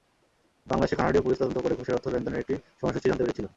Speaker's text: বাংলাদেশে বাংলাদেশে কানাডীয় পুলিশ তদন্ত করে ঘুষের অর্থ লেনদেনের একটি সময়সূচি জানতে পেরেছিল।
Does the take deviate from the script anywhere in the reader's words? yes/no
yes